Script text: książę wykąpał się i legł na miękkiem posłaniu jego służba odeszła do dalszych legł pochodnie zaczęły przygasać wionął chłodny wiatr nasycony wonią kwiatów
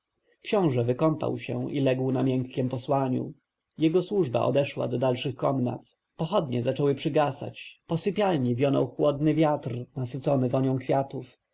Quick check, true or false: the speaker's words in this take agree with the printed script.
false